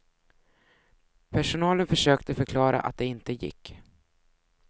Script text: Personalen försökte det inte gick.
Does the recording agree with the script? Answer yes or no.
no